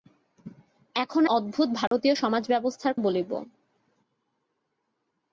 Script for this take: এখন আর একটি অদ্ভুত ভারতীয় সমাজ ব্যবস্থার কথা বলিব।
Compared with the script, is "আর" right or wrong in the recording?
wrong